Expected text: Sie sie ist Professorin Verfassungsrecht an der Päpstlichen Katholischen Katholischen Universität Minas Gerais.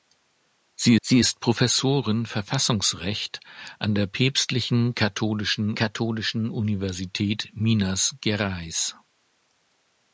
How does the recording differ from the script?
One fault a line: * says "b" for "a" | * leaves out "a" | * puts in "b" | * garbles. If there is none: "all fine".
all fine